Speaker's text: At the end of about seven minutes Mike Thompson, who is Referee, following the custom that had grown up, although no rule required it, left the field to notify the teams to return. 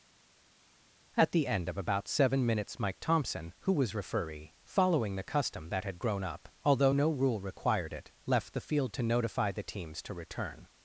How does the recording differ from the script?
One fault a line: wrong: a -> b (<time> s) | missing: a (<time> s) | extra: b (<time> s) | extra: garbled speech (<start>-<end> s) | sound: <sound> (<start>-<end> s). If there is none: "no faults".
wrong: is -> was (3.7 s)